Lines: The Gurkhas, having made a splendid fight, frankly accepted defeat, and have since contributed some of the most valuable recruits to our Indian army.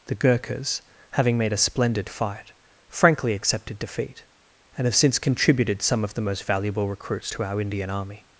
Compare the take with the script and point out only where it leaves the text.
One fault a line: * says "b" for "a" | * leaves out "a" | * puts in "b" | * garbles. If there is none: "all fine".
all fine